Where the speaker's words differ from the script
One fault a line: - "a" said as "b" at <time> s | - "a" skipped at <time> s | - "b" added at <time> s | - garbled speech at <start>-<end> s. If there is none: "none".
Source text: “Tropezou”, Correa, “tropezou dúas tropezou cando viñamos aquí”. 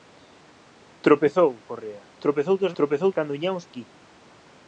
none